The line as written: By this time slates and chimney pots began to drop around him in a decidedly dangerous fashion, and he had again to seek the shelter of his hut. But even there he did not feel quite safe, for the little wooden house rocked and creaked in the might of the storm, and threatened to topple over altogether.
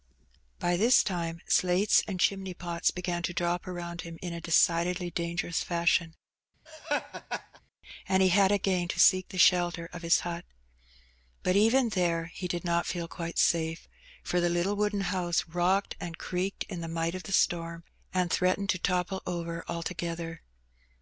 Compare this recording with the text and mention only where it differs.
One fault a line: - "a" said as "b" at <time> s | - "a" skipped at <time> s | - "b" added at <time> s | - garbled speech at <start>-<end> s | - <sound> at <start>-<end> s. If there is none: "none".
- laugh at 6.7-7.6 s